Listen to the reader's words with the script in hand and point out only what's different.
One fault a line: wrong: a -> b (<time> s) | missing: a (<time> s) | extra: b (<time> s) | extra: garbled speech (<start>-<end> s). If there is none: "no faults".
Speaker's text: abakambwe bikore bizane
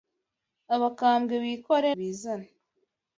no faults